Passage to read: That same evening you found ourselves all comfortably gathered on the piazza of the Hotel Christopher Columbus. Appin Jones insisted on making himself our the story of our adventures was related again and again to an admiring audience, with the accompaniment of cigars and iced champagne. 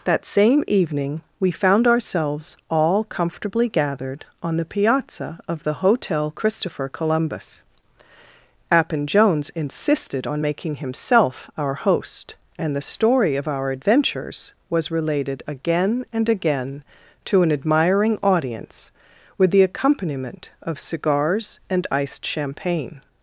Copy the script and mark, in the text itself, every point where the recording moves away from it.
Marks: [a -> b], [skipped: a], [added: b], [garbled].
That same evening [you -> we] found ourselves all comfortably gathered on the piazza of the Hotel Christopher Columbus. Appin Jones insisted on making himself our [added: host and] the story of our adventures was related again and again to an admiring audience, with the accompaniment of cigars and iced champagne.